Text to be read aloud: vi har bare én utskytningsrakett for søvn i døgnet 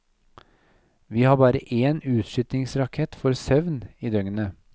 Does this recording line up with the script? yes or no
yes